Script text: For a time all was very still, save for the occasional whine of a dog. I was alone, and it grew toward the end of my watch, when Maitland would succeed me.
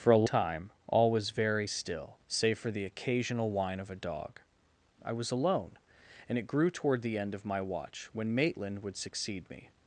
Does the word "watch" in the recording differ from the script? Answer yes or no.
no